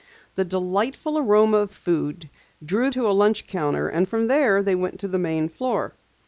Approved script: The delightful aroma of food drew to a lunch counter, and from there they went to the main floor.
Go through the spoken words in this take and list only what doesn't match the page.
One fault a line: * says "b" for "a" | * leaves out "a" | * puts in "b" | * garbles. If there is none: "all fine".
all fine